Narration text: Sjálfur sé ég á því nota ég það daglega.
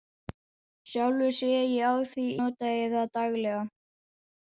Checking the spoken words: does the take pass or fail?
pass